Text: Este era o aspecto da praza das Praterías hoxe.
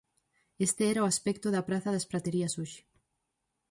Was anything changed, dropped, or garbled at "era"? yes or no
no